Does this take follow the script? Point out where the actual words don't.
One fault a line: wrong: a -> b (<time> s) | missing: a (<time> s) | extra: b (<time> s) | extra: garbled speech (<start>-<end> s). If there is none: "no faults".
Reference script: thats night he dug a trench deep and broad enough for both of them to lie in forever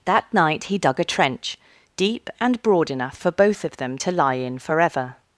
wrong: thats -> that (0.1 s)